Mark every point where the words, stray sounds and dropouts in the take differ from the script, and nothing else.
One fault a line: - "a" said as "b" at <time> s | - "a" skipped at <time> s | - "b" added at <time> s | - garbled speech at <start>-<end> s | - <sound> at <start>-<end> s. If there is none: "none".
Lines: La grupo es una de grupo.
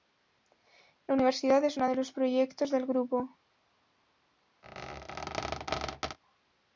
- "grupo" said as "universidad" at 1.1 s
- "los proyectos del" added at 1.9 s
- squeak at 4.6-6.2 s